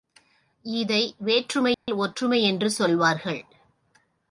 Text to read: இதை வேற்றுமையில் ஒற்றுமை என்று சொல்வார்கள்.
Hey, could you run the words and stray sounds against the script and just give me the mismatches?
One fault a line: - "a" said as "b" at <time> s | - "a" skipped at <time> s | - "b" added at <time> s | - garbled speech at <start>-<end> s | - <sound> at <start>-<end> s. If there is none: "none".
- dropout at 1.7-1.9 s